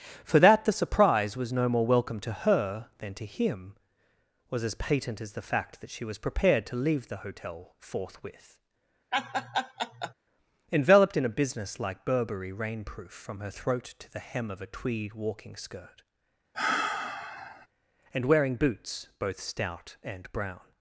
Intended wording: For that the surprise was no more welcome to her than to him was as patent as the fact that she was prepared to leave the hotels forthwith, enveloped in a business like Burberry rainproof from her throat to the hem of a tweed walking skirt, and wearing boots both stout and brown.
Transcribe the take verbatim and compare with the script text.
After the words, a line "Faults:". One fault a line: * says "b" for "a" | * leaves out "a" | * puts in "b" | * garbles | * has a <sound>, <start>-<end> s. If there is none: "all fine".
For that the surprise was no more welcome to her than to him was as patent as the fact that she was prepared to leave the hotel forthwith, enveloped in a business like Burberry rainproof from her throat to the hem of a tweed walking skirt, and wearing boots both stout and brown.
Faults:
* says "hotel" for "hotels"
* has a laugh, 9.1-10.1 s
* has a sigh, 16.5-17.7 s